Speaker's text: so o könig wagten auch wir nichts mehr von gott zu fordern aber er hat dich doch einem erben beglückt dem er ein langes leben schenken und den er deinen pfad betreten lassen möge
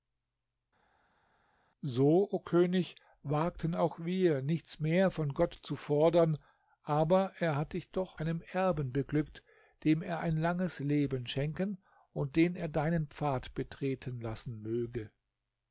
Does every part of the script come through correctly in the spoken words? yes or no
yes